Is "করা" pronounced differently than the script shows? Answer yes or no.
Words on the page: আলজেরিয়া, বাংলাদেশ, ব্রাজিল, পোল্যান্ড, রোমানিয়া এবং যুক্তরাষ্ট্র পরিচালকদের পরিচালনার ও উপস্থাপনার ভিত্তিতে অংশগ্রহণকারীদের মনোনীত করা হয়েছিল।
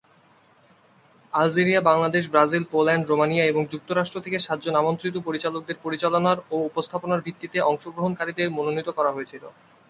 no